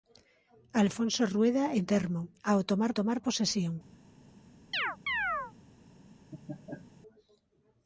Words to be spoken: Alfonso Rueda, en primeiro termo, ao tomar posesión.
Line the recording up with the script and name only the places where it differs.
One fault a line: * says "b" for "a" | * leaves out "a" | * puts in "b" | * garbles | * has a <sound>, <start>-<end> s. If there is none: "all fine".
* leaves out "primeiro"
* puts in "tomar"
* has a chirp, 4.7-5.5 s
* has a laugh, 6.3-6.9 s